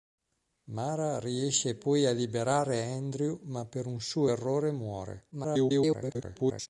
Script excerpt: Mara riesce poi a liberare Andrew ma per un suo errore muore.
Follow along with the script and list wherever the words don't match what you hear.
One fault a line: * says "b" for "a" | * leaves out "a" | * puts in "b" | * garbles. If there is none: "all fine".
* garbles